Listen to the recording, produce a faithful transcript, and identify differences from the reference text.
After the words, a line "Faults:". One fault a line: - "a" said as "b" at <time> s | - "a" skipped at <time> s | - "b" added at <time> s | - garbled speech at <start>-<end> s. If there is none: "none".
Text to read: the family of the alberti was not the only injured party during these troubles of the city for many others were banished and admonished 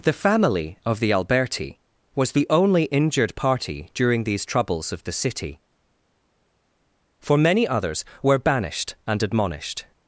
the family of the alberti was the only injured party during these troubles of the city for many others were banished and admonished
Faults:
- "not" skipped at 2.3 s